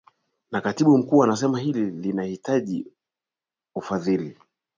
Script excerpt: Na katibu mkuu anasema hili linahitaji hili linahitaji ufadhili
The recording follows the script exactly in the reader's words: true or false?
false